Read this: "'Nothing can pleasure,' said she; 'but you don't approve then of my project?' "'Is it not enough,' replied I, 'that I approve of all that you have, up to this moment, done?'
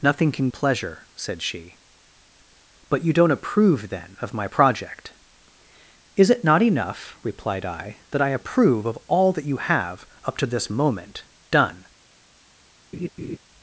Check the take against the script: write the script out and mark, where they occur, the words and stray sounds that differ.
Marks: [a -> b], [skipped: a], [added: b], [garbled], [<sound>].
"'Nothing can pleasure,' said she; 'but you don't approve then of my project?' "'Is it not enough,' replied I, 'that I approve of all that you have, up to this moment, done?' [laugh]